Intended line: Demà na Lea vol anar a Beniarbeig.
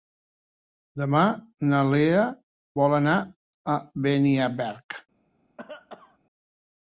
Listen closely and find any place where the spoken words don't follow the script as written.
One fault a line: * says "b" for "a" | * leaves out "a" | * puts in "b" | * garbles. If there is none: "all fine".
all fine